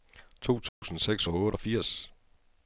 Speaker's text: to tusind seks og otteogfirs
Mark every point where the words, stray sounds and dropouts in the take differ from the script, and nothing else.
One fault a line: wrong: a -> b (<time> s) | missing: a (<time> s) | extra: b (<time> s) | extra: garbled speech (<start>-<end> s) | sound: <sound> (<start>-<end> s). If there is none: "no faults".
sound: dropout (0.7-0.8 s)